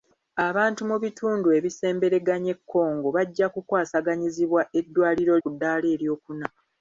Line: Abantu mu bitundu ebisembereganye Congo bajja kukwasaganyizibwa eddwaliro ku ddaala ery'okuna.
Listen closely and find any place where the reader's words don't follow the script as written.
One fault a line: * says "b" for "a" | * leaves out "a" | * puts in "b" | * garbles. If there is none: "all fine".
all fine